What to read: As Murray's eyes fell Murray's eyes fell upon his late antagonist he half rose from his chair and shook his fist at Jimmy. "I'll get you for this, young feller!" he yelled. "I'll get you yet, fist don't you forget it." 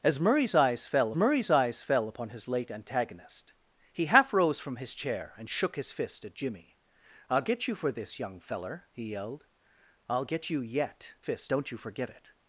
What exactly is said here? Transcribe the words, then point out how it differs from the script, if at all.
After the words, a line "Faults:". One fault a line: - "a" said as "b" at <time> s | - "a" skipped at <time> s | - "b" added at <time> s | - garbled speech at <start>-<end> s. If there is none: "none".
As Murray's eyes fell Murray's eyes fell upon his late antagonist he half rose from his chair and shook his fist at Jimmy. "I'll get you for this, young feller!" he yelled. "I'll get you yet, fist don't you forget it."
Faults:
none